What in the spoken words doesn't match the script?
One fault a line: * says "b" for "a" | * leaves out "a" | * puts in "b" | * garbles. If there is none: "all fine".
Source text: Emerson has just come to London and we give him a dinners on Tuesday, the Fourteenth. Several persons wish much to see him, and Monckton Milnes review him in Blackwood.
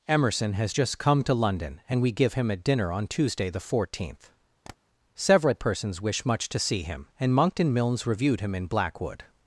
* says "dinner" for "dinners"
* says "reviewed" for "review"